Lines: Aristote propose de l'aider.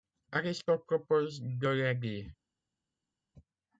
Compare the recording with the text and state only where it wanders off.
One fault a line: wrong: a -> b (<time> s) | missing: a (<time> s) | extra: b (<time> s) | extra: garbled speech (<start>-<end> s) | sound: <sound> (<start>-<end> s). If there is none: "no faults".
no faults